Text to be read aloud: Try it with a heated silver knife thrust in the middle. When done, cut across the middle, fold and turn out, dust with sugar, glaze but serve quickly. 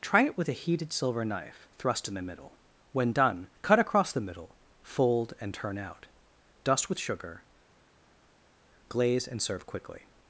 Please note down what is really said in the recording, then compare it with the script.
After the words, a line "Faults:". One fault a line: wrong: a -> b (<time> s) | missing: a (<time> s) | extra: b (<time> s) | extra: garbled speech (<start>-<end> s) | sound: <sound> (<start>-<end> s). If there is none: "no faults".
Try it with a heated silver knife thrust in the middle. When done, cut across the middle, fold and turn out, dust with sugar, glaze and serve quickly.
Faults:
wrong: but -> and (9.3 s)